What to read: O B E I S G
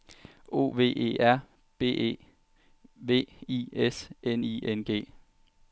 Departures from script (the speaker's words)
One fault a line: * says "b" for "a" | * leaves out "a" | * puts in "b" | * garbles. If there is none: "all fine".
* puts in "V E R"
* puts in "V"
* puts in "N I N"